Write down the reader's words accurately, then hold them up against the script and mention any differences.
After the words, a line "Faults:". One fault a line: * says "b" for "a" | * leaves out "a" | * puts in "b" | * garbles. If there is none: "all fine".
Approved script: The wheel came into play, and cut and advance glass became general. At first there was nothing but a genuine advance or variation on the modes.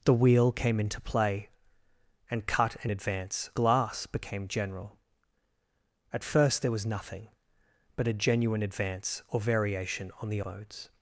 The wheel came into play, and cut and advance glass became general. At first there was nothing but a genuine advance or variation on the modes.
Faults:
all fine